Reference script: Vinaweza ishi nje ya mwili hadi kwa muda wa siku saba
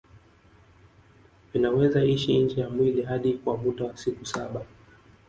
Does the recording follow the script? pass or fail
pass